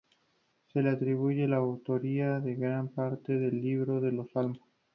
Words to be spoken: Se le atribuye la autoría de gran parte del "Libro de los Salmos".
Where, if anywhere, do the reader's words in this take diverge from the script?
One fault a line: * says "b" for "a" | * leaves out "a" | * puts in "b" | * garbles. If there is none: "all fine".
all fine